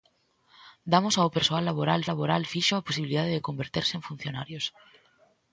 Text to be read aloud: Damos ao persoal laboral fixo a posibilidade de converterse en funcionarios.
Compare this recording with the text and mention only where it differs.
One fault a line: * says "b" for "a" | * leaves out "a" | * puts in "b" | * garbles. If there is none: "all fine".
* puts in "laboral"